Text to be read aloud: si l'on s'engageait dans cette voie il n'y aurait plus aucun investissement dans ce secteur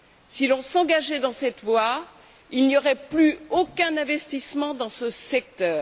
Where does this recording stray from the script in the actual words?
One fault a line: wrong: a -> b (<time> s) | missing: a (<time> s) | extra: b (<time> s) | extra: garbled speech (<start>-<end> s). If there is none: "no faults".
no faults